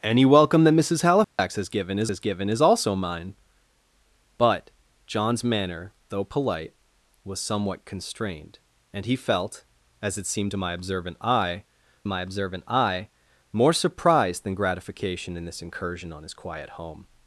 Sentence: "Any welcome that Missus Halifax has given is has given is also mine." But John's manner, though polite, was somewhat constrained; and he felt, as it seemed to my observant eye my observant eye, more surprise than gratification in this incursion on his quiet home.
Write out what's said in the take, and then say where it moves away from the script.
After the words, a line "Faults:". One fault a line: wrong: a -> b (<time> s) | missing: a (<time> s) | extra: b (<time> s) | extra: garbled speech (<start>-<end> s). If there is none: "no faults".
"Any welcome that Missus Halifax has given is has given is also mine." But John's manner, though polite, was somewhat constrained; and he felt, as it seemed to my observant eye my observant eye, more surprise than gratification in this incursion on his quiet home.
Faults:
no faults